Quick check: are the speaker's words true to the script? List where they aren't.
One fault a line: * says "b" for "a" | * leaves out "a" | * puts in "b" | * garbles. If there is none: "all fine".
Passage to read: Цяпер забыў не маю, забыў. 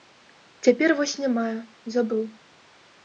* says "вось" for "забыў"